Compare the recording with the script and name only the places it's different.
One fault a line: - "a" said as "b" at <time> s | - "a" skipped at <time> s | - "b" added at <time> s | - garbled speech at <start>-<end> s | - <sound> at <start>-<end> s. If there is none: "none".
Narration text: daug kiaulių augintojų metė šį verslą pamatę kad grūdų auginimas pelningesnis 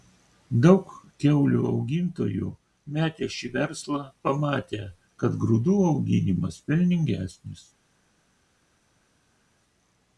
none